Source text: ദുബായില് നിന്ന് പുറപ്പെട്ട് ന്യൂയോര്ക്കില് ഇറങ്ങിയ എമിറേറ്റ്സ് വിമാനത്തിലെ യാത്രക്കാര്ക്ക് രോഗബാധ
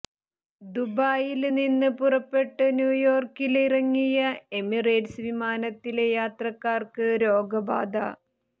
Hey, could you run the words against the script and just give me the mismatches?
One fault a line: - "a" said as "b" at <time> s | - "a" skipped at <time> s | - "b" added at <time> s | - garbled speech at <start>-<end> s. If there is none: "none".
none